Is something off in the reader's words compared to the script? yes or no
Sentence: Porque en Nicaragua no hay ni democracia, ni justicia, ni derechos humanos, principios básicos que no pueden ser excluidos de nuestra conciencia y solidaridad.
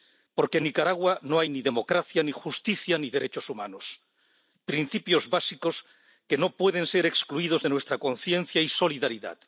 no